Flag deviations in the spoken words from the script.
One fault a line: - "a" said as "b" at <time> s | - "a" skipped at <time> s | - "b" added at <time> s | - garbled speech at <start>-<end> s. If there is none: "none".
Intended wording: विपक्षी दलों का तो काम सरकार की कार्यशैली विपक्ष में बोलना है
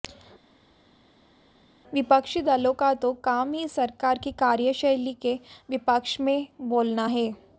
- "ही" added at 3.5 s
- "के" added at 5.2 s